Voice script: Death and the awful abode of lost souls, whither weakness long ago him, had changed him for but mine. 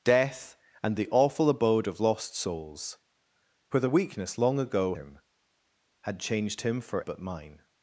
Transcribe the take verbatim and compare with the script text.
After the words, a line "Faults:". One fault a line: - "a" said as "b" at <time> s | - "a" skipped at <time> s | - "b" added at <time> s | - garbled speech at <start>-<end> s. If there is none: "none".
Death and the awful abode of lost souls, whither weakness long ago him, had changed him for but mine.
Faults:
none